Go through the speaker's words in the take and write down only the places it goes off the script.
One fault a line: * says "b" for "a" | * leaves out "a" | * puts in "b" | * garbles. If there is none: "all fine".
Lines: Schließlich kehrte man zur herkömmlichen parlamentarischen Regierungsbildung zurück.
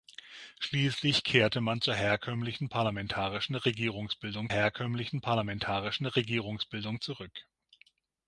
* puts in "herkömmlichen parlamentarischen Regierungsbildung"